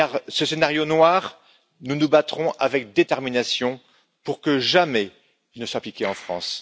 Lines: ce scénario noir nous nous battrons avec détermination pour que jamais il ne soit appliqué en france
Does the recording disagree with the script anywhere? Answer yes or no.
no